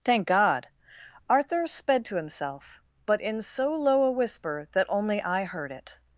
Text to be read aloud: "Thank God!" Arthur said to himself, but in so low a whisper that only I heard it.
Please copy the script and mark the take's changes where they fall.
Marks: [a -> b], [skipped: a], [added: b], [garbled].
"Thank God!" Arthur [said -> sped] to himself, but in so low a whisper that only I heard it.